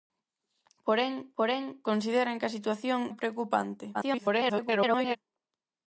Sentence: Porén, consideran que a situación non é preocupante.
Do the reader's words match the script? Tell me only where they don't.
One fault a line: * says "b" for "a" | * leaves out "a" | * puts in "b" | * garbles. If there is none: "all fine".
* puts in "porén"
* leaves out "non"
* garbles